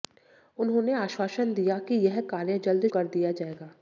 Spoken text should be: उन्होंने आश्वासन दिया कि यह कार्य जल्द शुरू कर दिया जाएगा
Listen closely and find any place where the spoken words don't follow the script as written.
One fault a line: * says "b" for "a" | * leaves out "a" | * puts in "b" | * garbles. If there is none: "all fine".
* leaves out "शुरू"